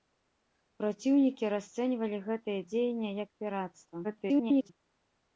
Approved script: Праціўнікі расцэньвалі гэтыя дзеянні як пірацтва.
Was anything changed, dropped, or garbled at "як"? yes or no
no